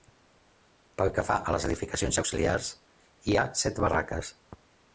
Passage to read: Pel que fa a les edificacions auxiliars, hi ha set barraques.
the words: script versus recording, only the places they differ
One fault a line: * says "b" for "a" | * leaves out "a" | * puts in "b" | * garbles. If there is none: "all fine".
all fine